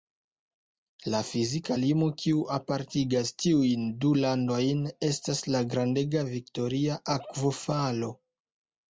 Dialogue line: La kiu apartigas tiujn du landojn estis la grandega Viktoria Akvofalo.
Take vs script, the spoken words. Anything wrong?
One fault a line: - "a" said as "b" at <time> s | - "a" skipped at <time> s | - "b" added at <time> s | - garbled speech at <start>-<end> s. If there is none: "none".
- "fizika limo" added at 1.3 s
- "estis" said as "estas" at 5.1 s